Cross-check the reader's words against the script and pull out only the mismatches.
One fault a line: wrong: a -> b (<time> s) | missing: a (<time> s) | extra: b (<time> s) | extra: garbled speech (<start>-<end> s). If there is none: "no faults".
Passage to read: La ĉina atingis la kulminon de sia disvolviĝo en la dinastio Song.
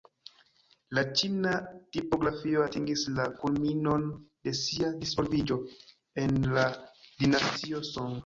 extra: tipografio (2.0 s)